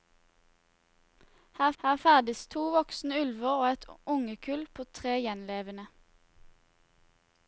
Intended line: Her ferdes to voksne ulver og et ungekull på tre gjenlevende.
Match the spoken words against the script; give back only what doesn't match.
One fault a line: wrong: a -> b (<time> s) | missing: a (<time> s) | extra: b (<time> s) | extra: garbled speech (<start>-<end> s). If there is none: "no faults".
extra: her (1.8 s)